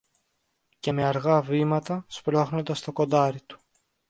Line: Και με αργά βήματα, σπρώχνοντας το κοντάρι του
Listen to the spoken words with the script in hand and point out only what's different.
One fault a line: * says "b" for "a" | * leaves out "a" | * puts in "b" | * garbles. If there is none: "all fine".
all fine